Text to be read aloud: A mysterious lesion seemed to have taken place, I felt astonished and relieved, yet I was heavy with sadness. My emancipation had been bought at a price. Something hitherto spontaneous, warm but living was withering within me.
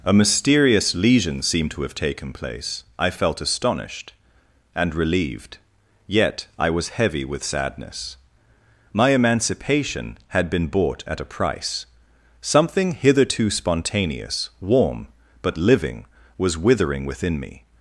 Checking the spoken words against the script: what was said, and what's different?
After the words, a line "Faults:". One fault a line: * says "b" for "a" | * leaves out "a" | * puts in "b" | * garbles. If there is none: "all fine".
A mysterious lesion seemed to have taken place, I felt astonished and relieved, yet I was heavy with sadness. My emancipation had been bought at a price. Something hitherto spontaneous, warm but living was withering within me.
Faults:
all fine